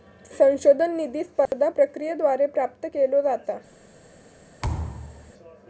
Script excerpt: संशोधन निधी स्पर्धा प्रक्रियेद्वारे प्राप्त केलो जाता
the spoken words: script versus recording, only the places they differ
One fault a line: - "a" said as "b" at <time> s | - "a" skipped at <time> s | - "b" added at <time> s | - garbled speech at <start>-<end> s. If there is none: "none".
none